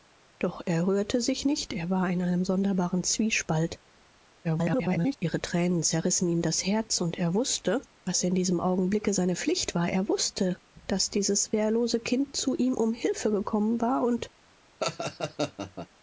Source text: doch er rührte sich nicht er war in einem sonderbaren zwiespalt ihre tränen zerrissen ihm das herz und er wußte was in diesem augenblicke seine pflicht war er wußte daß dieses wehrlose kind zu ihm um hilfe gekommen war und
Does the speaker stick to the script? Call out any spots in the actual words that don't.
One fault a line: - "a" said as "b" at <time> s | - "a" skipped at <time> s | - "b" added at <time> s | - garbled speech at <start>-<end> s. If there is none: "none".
- garbled speech at 4.4-5.2 s